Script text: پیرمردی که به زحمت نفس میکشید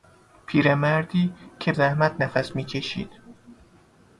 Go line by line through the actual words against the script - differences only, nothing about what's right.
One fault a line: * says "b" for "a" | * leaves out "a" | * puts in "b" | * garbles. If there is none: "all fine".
* leaves out "به"